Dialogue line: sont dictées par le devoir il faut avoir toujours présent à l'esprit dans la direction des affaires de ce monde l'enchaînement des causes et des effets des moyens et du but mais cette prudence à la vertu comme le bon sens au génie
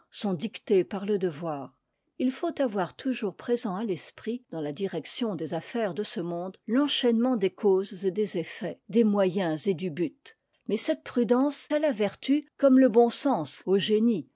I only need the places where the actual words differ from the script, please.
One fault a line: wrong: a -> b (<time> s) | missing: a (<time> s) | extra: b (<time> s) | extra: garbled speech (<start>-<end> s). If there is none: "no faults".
no faults